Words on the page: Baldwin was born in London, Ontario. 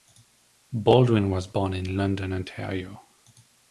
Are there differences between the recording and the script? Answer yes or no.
no